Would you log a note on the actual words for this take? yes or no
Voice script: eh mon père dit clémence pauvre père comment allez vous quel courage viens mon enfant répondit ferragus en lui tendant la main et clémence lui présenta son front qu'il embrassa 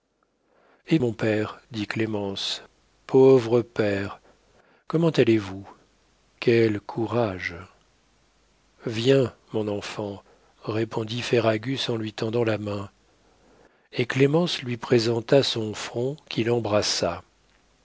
no